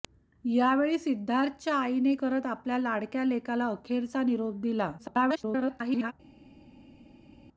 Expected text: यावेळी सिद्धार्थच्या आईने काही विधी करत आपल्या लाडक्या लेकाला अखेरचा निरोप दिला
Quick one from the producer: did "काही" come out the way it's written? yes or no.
no